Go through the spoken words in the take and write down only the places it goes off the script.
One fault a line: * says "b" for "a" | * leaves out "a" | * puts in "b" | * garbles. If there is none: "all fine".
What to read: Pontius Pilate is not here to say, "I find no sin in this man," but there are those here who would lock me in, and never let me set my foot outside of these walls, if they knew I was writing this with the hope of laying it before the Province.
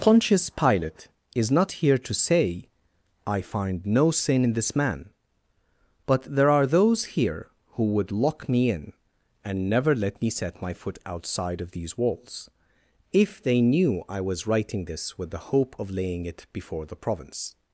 all fine